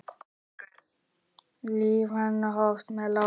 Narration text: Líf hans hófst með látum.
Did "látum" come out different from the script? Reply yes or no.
no